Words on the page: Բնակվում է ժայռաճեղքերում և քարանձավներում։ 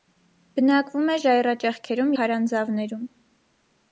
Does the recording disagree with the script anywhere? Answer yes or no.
yes